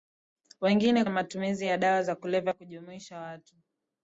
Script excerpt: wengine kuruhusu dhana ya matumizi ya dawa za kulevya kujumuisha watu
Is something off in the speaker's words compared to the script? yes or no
yes